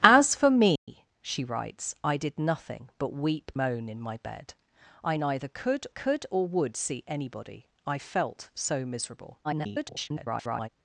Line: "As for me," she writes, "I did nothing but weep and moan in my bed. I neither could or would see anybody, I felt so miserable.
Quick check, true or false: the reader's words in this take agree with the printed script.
false